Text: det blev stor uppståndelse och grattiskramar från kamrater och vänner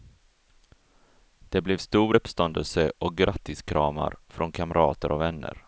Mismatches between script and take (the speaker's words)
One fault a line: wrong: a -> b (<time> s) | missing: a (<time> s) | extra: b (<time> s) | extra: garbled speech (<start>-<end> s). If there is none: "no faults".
no faults